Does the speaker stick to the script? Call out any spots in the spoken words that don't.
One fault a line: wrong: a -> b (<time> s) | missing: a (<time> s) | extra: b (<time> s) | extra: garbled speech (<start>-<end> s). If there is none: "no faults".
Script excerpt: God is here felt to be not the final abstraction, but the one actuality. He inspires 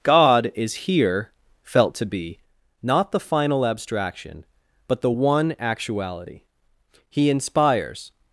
no faults